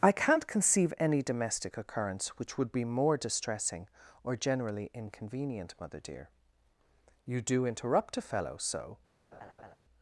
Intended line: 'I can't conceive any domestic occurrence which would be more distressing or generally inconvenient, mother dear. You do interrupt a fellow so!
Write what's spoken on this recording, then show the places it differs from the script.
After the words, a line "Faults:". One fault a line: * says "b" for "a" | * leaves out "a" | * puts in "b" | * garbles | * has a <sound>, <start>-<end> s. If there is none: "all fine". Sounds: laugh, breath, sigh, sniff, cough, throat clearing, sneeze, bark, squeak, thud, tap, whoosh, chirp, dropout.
'I can't conceive any domestic occurrence which would be more distressing or generally inconvenient, mother dear. You do interrupt a fellow so!
Faults:
* has a laugh, 9.3-9.8 s